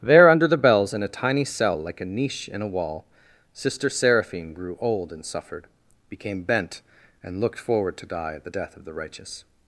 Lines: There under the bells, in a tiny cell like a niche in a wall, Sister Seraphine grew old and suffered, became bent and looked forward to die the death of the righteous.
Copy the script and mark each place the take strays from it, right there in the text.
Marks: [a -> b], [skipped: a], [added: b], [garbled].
There under the bells, in a tiny cell like a niche in a wall, Sister Seraphine grew old and suffered, became bent and looked forward to die [added: at] the death of the righteous.